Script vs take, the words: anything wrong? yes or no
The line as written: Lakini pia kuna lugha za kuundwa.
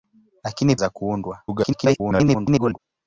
yes